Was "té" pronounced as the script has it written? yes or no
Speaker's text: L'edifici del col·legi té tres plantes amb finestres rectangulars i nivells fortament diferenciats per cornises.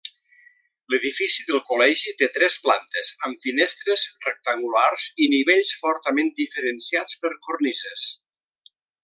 yes